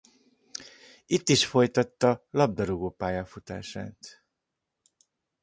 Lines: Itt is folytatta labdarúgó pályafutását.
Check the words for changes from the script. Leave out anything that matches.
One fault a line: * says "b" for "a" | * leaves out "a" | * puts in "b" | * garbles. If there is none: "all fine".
all fine